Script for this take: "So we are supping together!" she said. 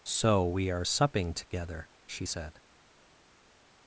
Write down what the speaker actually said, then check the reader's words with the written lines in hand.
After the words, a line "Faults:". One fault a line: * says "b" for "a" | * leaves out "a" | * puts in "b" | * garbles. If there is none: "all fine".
"So we are supping together!" she said.
Faults:
all fine